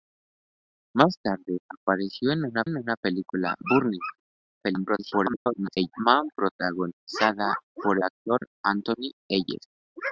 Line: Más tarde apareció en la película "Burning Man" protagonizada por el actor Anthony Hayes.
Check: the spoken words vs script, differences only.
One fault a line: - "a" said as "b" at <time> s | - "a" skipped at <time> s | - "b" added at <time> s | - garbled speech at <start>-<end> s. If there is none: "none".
- "en la" added at 2.6 s
- garbled speech at 4.6-5.9 s
- "el" skipped at 8.0 s